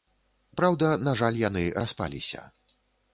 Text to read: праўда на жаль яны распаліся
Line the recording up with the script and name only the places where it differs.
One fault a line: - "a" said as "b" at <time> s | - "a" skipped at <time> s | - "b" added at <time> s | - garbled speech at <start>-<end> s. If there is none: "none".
none